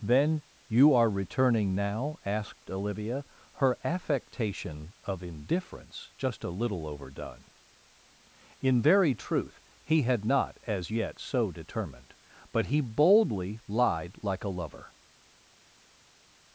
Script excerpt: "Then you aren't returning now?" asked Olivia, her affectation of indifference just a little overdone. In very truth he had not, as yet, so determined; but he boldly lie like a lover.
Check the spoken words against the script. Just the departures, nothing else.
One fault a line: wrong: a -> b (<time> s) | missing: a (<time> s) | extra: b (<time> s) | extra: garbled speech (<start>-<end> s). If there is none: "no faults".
wrong: aren't -> are (0.9 s)
wrong: lie -> lied (13.7 s)